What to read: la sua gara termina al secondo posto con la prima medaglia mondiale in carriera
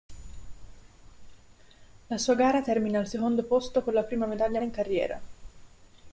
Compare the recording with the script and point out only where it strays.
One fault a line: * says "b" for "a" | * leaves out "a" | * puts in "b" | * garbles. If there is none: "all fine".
* leaves out "mondiale"